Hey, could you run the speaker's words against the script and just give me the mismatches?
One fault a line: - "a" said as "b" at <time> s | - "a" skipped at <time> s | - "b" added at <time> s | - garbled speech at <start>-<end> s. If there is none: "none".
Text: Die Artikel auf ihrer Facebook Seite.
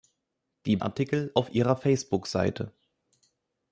none